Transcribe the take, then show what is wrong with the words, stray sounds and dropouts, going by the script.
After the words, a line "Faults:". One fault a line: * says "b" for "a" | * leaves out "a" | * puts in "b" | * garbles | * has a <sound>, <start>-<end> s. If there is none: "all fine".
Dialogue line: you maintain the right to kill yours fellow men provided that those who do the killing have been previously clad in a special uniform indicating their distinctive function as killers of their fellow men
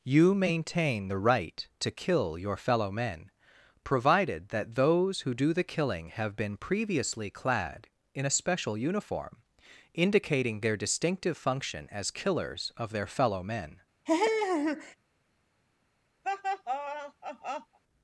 you maintain the right to kill your fellow men provided that those who do the killing have been previously clad in a special uniform indicating their distinctive function as killers of their fellow men
Faults:
* says "your" for "yours"
* has a laugh, 14.1-15.0 s
* has a laugh, 16.2-17.8 s